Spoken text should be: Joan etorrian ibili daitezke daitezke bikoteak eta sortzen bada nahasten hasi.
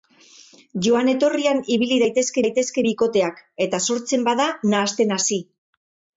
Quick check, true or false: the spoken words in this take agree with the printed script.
true